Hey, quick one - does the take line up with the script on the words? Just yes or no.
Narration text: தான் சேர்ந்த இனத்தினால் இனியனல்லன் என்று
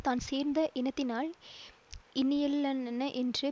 yes